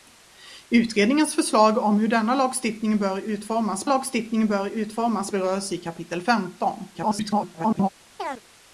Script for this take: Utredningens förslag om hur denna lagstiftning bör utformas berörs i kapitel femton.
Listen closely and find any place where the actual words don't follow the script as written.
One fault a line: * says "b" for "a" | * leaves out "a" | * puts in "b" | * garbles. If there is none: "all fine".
* puts in "lagstiftning bör utformas"
* garbles